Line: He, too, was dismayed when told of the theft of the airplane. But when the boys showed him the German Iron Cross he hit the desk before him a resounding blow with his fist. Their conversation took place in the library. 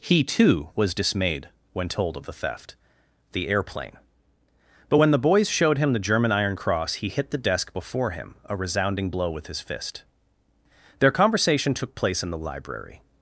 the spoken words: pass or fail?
fail